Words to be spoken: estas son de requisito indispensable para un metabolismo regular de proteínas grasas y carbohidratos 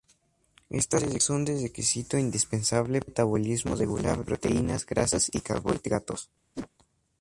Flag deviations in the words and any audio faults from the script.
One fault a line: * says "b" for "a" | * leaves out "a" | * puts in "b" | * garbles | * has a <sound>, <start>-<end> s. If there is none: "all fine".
* leaves out "son"
* leaves out "de"
* has a whoosh, 6.5-6.7 s